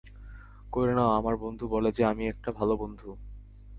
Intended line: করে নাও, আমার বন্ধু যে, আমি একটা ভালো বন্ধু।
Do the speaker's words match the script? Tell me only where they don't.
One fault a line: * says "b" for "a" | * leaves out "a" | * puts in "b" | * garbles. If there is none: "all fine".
* puts in "বলে"